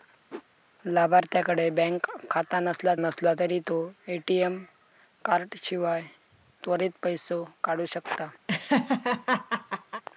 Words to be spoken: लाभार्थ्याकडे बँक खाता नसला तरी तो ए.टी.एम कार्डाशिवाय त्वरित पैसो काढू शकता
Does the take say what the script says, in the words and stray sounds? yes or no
no